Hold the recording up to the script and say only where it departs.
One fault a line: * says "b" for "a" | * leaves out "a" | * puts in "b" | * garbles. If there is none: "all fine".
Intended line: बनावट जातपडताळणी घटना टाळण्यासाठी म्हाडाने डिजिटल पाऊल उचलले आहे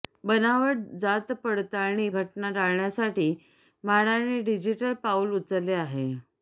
all fine